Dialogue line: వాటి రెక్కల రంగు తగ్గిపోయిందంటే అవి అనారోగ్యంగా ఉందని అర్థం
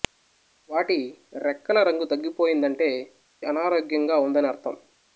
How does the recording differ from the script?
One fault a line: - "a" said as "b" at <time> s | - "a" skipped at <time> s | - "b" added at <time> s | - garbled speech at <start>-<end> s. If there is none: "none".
- "అవి" skipped at 2.9 s